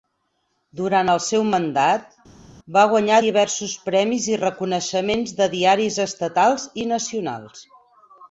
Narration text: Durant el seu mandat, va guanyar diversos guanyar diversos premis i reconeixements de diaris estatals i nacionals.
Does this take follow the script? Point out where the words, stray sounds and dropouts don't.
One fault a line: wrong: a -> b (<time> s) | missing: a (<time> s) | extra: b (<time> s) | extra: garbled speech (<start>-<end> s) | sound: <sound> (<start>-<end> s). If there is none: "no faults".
missing: guanyar diversos (3.7 s)